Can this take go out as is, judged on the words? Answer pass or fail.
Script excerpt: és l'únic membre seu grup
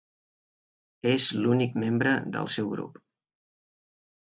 fail